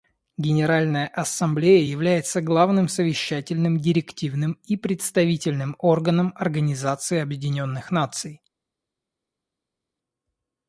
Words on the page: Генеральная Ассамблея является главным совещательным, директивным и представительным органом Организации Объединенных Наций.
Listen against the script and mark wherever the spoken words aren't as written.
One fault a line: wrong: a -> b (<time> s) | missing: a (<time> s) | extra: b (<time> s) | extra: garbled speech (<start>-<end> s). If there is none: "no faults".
no faults